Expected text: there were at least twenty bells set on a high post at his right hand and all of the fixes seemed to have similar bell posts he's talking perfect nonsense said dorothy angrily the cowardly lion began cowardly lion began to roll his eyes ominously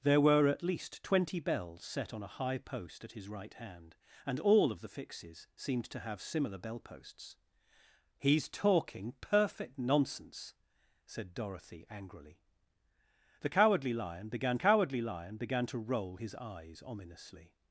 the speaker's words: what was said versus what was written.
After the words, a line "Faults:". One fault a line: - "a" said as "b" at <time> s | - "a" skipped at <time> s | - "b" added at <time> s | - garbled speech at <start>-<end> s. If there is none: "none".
there were at least twenty bells set on a high post at his right hand and all of the fixes seemed to have similar bell posts he's talking perfect nonsense said dorothy angrily the cowardly lion began cowardly lion began to roll his eyes ominously
Faults:
none